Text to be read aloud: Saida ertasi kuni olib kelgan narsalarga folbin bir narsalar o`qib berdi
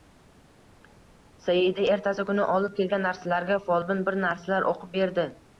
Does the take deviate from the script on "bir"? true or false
false